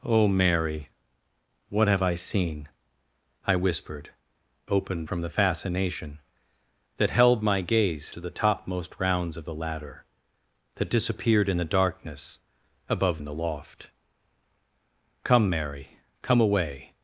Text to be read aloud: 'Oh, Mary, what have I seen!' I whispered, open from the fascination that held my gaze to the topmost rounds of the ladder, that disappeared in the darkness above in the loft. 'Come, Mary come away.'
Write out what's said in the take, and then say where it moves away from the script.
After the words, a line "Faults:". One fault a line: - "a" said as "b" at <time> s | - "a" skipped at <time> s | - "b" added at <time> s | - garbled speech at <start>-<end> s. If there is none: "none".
'Oh, Mary, what have I seen!' I whispered, open from the fascination that held my gaze to the topmost rounds of the ladder, that disappeared in the darkness above in the loft. 'Come, Mary come away.'
Faults:
none